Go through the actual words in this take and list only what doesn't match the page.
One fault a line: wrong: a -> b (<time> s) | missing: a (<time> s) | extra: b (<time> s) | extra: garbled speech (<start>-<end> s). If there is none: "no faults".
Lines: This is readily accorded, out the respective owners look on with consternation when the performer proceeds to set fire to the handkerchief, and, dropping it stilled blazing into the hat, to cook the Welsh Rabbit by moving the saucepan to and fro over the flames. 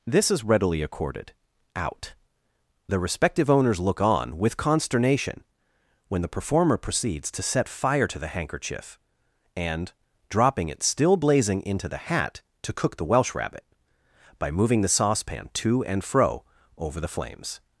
wrong: stilled -> still (10.8 s)